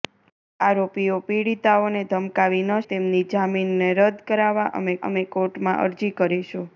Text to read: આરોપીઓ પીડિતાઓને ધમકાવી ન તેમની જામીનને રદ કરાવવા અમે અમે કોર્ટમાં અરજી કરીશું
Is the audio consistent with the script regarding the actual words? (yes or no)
yes